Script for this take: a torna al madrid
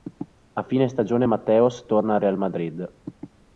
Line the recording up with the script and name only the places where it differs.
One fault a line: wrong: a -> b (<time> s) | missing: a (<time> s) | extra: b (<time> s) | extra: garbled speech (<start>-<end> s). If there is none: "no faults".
extra: fine stagione mateos (0.6 s)
extra: real (2.2 s)